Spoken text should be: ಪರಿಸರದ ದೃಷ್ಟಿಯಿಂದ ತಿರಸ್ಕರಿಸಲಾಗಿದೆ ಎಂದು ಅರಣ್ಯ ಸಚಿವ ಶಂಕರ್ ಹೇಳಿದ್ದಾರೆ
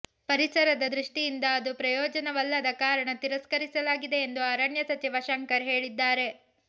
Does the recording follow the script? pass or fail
fail